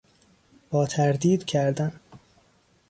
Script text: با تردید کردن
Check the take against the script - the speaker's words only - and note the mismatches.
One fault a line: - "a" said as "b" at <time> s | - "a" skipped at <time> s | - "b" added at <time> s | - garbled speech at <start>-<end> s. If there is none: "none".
none